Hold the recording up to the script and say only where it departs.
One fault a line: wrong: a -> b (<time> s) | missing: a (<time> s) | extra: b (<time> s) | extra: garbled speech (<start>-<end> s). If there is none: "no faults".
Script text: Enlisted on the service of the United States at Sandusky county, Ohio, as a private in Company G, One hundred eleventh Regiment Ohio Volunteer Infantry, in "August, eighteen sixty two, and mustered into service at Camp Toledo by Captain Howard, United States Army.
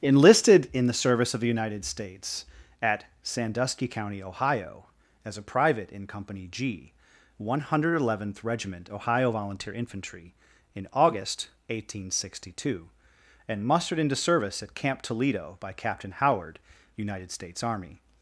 wrong: on -> in (0.7 s)